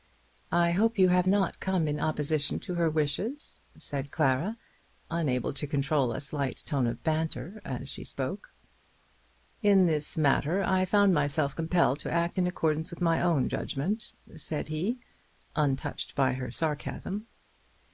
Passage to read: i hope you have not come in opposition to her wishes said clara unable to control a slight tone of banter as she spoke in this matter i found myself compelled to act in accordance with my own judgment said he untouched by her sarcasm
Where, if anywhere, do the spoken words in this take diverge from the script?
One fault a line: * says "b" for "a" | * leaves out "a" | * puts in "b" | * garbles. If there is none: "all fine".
all fine